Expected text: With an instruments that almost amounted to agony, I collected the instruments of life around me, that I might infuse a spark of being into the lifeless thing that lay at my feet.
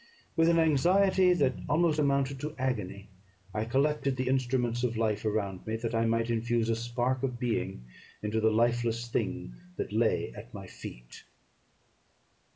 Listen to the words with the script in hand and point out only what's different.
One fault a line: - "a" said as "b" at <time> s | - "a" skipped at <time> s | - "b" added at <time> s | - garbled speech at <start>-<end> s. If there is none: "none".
- "instruments" said as "anxiety" at 0.6 s